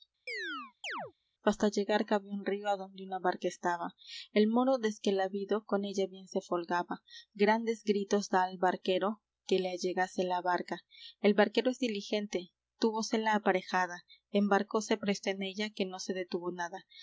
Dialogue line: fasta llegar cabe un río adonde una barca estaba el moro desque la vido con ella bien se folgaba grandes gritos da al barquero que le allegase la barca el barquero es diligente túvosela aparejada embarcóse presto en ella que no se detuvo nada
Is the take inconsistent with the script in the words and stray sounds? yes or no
yes